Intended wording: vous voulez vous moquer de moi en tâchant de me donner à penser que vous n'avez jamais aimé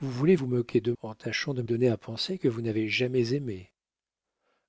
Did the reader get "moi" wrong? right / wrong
wrong